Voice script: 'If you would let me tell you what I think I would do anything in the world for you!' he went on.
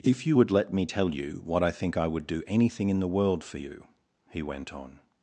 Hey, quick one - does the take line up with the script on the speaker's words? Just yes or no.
yes